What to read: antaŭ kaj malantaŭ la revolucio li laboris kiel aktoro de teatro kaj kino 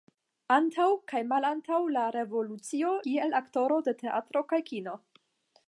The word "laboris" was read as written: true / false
false